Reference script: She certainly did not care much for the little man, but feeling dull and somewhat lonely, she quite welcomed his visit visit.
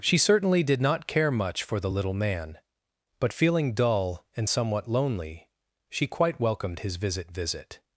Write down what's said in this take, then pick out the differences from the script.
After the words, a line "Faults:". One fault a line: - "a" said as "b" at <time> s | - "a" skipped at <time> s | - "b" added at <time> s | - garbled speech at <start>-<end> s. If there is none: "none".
She certainly did not care much for the little man, but feeling dull and somewhat lonely, she quite welcomed his visit visit.
Faults:
none